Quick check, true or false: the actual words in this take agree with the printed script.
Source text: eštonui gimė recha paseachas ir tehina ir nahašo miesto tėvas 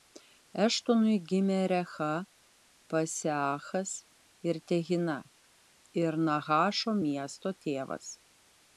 true